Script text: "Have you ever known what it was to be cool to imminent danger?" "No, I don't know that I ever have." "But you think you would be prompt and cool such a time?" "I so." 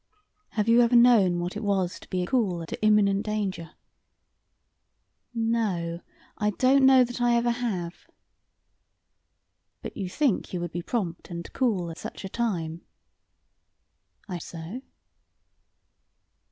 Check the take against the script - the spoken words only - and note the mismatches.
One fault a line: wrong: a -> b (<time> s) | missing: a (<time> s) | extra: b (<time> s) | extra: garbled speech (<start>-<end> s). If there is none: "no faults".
no faults